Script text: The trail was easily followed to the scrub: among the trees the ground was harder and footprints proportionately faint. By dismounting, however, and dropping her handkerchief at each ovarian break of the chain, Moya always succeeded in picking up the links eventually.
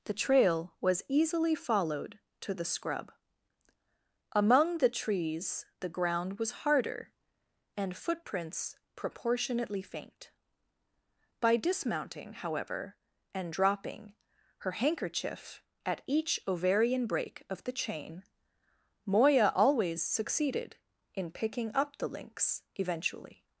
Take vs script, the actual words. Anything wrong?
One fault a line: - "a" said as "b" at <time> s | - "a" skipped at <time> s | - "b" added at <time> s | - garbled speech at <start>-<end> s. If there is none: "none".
none